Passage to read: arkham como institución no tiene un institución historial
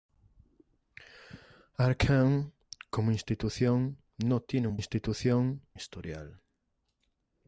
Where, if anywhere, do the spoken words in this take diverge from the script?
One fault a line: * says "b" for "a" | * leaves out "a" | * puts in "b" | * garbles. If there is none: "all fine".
all fine